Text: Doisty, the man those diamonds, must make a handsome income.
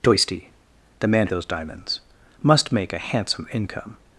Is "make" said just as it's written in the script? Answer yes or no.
yes